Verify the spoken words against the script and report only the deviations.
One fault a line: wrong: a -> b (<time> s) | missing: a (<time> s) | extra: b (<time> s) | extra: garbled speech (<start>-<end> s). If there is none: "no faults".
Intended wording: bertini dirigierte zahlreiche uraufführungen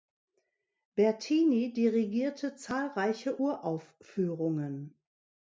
no faults